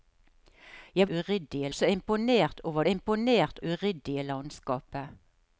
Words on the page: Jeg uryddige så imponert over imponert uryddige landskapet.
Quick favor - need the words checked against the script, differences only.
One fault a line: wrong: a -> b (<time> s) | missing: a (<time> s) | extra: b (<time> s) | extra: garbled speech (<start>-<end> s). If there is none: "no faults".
no faults